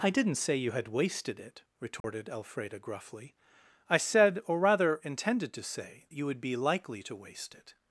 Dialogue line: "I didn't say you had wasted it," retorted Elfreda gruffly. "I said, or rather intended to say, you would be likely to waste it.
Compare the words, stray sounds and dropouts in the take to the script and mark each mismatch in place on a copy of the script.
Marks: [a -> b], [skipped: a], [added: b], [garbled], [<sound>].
"I didn't say you had wasted it," retorted [dropout] Elfreda gruffly. "I said, or rather intended to say, you would be likely to waste it.